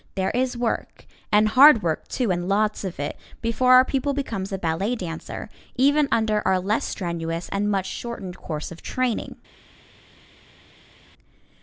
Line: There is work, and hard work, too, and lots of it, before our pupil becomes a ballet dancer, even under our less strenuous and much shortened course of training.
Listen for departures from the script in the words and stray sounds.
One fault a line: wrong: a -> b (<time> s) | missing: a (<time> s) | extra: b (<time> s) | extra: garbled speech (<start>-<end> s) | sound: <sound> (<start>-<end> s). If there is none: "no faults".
no faults